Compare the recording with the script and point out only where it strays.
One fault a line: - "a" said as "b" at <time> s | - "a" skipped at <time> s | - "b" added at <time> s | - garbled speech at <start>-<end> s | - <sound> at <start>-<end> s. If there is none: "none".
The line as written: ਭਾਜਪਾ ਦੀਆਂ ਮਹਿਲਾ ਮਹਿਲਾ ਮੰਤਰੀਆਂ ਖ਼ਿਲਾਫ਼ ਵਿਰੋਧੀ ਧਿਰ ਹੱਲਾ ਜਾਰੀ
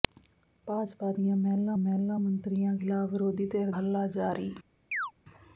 - chirp at 4.9-5.1 s